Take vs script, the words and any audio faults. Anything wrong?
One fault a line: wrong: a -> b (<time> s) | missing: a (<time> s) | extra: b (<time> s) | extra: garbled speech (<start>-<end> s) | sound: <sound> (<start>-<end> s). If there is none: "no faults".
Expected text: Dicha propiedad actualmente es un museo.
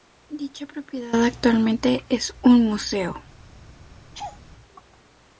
sound: laugh (4.1-4.4 s)